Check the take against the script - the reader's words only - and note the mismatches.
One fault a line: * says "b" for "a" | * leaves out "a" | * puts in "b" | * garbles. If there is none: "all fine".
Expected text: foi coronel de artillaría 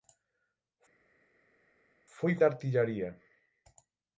* leaves out "coronel"